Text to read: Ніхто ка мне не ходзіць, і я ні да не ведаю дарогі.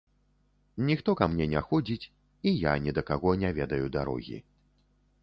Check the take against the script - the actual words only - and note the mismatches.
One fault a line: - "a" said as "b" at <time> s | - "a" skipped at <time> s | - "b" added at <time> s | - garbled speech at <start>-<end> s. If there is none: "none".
- "каго" added at 3.1 s